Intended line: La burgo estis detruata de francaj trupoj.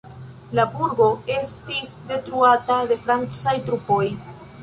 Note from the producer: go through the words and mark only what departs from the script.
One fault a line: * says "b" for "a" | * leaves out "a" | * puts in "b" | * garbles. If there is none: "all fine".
all fine